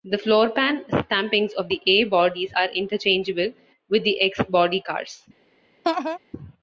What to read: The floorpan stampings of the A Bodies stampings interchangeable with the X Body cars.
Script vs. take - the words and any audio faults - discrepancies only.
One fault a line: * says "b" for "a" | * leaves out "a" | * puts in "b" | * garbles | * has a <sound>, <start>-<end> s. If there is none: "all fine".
* says "are" for "stampings"
* has a laugh, 5.8-6.2 s